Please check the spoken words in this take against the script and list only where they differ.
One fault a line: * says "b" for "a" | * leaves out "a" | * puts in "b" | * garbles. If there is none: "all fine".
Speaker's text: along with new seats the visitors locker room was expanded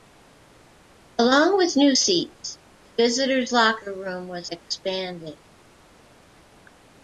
all fine